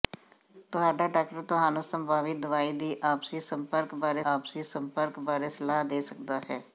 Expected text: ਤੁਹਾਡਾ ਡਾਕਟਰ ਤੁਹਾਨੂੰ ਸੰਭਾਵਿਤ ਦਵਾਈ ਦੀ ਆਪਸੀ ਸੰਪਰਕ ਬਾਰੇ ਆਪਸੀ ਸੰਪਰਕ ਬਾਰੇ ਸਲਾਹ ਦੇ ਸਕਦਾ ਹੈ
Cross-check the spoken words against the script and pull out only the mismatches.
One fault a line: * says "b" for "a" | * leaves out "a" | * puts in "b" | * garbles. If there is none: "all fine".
all fine